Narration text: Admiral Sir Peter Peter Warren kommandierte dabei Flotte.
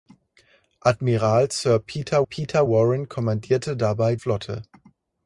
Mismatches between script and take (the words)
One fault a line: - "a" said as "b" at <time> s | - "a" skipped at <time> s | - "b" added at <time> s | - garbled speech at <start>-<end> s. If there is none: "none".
none